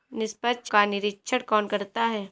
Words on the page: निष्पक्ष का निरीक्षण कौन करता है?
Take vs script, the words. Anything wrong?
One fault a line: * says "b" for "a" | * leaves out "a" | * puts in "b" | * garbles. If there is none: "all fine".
all fine